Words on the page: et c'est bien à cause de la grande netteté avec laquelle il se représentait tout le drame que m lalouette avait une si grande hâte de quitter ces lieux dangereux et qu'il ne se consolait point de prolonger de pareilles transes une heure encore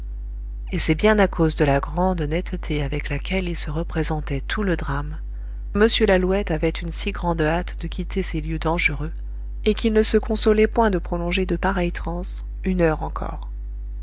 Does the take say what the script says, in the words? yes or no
no